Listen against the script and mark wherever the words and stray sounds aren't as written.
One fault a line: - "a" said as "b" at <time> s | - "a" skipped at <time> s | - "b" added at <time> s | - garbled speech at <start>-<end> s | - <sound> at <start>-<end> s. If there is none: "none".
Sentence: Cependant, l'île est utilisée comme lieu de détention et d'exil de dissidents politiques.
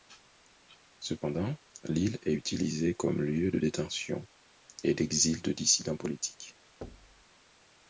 - thud at 6.8-7.2 s